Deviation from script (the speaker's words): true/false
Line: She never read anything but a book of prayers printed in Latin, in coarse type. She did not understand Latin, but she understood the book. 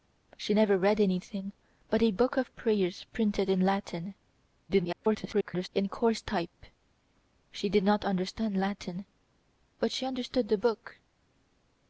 true